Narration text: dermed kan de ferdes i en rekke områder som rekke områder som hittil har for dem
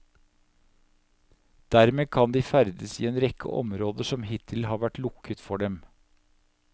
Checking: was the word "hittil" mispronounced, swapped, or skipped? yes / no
yes